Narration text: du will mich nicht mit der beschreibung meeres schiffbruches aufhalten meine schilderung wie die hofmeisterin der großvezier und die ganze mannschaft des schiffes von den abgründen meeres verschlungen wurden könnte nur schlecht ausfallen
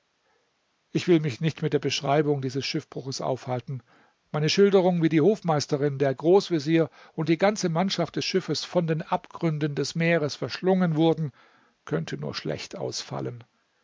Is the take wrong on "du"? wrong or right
wrong